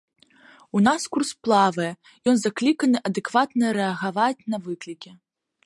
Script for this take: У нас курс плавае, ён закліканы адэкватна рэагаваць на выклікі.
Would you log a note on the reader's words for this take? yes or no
no